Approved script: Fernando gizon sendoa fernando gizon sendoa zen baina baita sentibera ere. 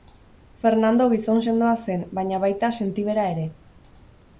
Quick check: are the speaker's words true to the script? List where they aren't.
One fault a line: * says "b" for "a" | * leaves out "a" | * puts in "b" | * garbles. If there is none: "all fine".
* leaves out "fernando gizon sendoa"